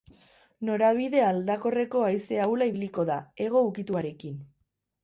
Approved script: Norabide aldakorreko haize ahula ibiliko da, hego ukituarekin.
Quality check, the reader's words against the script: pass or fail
pass